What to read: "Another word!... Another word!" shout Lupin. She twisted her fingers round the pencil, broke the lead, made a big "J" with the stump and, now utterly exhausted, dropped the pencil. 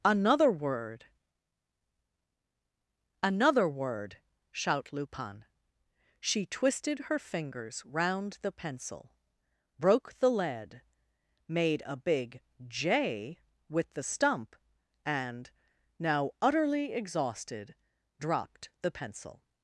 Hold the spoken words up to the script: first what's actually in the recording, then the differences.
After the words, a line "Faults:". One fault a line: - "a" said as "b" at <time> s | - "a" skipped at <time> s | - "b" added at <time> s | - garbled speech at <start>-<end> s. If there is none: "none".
"Another word!... Another word!" shout Lupin. She twisted her fingers round the pencil, broke the lead, made a big "J" with the stump and, now utterly exhausted, dropped the pencil.
Faults:
none